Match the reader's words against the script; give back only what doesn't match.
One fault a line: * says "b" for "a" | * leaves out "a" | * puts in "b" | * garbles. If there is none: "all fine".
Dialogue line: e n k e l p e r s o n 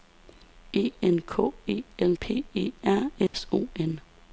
all fine